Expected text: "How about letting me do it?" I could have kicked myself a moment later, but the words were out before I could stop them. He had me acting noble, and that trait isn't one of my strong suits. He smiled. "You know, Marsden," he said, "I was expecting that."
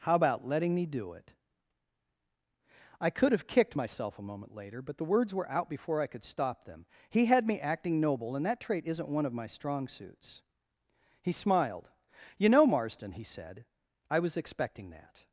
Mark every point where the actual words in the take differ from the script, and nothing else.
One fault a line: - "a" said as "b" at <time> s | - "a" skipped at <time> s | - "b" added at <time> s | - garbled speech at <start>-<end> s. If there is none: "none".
none